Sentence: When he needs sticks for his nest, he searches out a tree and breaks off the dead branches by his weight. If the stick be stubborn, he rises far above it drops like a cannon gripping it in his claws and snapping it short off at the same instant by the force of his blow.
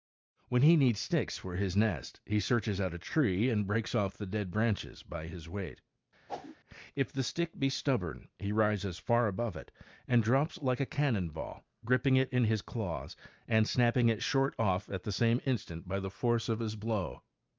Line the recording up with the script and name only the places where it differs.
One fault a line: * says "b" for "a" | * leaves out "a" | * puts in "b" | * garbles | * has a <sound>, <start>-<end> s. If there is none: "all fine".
* has a whoosh, 6.3-6.6 s
* puts in "and"
* puts in "ball"